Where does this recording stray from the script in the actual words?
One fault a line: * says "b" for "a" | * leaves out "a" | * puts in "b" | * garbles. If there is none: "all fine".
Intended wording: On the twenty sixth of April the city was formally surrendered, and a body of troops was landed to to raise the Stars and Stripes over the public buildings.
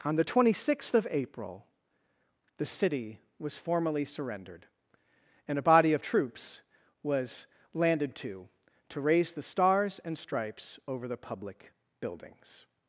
all fine